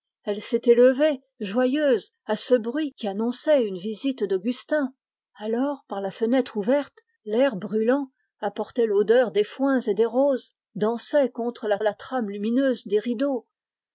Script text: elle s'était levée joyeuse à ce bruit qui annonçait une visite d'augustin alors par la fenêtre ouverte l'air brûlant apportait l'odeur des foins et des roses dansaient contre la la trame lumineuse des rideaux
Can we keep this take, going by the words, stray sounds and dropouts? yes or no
yes